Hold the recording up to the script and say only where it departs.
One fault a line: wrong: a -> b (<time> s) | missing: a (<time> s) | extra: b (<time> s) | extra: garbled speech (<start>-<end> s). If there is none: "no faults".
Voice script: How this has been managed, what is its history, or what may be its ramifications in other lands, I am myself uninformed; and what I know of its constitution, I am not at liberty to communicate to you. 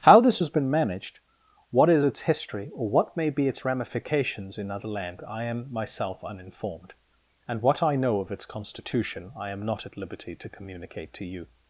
wrong: lands -> land (4.9 s)